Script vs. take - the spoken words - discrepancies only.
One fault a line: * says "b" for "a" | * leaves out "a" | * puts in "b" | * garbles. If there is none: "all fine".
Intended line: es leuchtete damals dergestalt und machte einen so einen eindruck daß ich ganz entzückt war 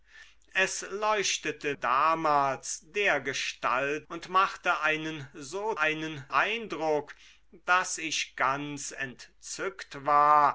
all fine